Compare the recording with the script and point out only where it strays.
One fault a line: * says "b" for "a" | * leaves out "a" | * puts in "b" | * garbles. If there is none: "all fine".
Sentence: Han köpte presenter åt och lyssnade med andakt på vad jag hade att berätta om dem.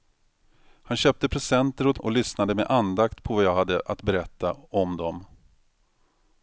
all fine